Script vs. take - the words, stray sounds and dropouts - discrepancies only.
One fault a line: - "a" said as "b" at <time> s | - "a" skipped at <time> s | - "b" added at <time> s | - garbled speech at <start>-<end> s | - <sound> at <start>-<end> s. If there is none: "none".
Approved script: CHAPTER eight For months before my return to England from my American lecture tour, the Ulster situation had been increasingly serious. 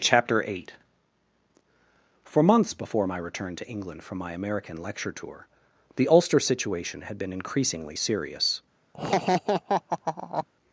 - laugh at 8.9-10.5 s